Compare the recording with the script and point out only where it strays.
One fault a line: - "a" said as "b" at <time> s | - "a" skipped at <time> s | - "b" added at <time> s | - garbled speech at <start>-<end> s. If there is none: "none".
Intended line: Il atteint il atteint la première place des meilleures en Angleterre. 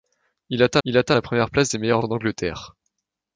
none